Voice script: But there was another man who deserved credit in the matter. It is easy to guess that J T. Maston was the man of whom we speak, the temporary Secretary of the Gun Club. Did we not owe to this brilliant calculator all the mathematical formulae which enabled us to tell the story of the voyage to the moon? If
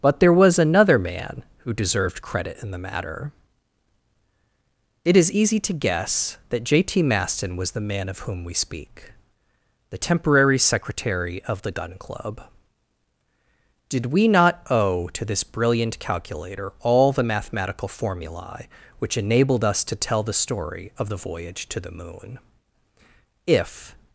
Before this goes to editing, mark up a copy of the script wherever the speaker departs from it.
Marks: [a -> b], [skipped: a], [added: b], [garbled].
But there was another man who deserved credit in the matter. It is easy to guess that J T. Maston was the man of whom we speak, the temporary Secretary of the Gun Club. Did we not owe to this brilliant calculator all the mathematical formulae which enabled us to tell the story of the voyage to the moon? If